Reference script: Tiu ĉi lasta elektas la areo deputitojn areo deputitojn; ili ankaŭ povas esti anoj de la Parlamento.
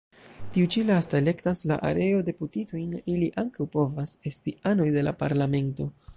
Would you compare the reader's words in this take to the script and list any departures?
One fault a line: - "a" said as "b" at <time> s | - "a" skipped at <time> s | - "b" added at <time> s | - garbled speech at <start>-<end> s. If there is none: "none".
- "areo deputitojn" skipped at 3.0 s